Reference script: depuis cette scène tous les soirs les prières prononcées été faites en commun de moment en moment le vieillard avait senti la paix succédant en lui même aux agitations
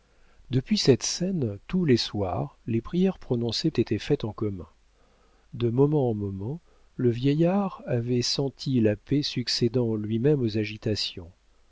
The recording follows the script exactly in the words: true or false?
true